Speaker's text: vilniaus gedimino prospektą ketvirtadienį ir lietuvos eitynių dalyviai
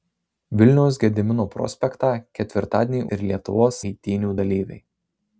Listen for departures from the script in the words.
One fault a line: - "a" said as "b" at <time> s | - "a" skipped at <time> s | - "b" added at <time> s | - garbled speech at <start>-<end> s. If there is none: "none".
none